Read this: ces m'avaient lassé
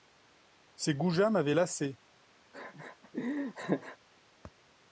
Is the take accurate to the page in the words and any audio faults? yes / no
no